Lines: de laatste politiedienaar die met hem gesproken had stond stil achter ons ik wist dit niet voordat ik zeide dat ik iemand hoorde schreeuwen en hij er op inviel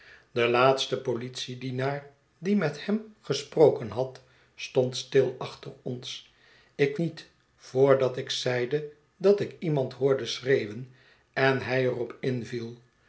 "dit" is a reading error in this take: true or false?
true